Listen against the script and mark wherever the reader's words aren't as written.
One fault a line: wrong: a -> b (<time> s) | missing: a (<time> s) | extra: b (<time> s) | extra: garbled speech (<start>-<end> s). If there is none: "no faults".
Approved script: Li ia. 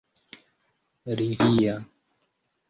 no faults